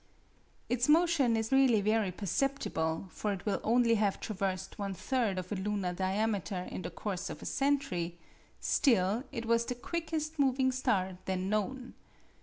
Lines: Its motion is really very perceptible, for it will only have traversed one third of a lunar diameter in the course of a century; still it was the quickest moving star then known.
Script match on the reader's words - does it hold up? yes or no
yes